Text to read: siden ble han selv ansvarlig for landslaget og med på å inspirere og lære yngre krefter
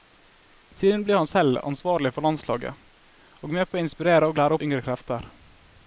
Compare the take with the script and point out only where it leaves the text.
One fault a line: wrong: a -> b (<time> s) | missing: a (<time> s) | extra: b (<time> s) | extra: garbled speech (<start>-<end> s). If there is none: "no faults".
no faults